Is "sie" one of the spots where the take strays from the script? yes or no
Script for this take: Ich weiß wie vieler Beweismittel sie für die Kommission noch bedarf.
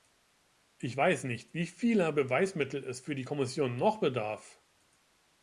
yes